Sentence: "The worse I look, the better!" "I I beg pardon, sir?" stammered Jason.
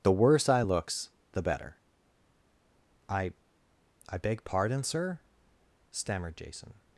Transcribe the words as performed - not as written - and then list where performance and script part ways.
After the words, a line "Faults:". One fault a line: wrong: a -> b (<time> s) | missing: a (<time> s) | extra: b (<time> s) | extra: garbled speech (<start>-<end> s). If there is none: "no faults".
"The worse I looks, the better!" "I I beg pardon, sir?" stammered Jason.
Faults:
wrong: look -> looks (0.6 s)